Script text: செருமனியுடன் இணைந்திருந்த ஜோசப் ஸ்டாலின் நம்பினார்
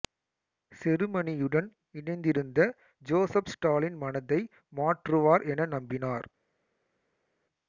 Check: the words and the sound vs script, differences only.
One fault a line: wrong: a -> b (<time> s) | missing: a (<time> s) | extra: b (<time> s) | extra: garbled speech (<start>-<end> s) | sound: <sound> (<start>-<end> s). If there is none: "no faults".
extra: மனதை மாற்றுவார் என (4.0 s)